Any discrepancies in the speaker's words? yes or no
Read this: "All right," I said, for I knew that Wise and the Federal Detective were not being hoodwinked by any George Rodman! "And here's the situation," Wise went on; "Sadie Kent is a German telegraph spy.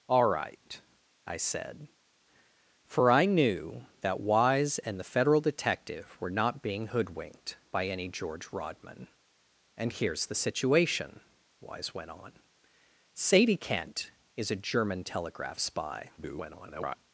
yes